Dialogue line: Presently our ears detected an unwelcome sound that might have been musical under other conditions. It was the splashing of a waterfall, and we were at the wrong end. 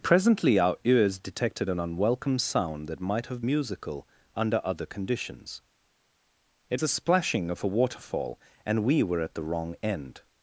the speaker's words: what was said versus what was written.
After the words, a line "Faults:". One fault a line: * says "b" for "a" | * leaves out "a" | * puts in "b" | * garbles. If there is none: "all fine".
Presently our ears detected an unwelcome sound that might have musical under other conditions. It the splashing of a waterfall, and we were at the wrong end.
Faults:
* leaves out "been"
* leaves out "was"